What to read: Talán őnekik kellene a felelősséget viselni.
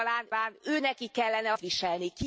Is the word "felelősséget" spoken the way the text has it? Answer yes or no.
no